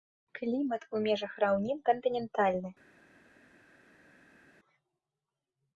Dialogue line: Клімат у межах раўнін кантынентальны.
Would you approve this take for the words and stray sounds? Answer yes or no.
yes